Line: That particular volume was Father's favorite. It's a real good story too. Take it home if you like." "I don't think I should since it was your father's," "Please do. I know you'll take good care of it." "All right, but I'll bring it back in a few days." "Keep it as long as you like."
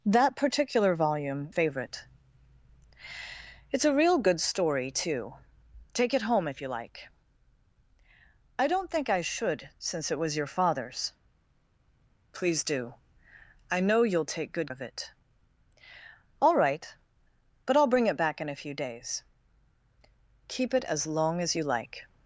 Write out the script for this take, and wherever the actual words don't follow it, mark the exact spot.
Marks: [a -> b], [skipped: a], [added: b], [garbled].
That particular volume [skipped: was Father's] favorite. It's a real good story too. Take it home if you like." "I don't think I should since it was your father's," "Please do. I know you'll take good [skipped: care] of it." "All right, but I'll bring it back in a few days." "Keep it as long as you like."